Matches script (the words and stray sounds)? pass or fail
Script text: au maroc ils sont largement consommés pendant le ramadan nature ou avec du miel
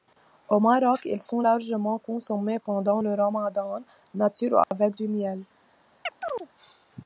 fail